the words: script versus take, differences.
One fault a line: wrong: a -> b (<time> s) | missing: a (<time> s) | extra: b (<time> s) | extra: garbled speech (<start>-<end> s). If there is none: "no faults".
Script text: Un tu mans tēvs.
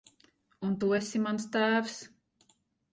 extra: esi (1.0 s)